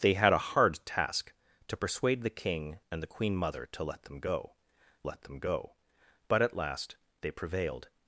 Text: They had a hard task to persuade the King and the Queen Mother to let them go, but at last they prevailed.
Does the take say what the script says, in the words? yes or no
no